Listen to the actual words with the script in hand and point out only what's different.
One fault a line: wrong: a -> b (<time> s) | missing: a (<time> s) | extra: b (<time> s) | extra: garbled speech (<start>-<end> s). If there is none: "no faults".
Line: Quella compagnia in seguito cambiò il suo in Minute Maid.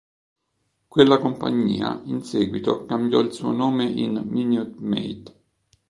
extra: nome (3.5 s)